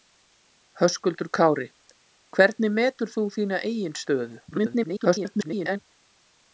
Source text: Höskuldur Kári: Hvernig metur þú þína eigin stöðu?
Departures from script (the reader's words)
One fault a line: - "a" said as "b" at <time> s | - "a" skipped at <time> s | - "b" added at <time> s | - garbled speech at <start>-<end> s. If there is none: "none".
- garbled speech at 4.5-5.8 s